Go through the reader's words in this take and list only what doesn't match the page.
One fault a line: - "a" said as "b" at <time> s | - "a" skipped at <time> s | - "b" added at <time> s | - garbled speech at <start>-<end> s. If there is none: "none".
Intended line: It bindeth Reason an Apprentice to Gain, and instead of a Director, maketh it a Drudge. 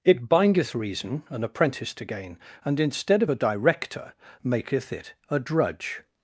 none